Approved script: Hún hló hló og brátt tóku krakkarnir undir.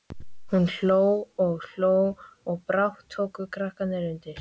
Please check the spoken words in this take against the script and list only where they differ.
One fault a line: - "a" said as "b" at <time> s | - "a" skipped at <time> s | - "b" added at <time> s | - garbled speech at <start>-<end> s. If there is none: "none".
- "og" added at 1.4 s